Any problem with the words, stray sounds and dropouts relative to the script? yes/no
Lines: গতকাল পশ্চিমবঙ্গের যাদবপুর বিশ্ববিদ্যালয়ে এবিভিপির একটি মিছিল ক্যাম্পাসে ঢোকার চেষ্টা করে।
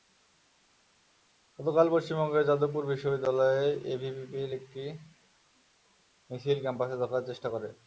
no